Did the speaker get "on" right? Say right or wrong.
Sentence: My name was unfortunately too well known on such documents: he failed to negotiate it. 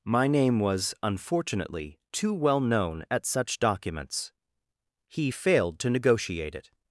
wrong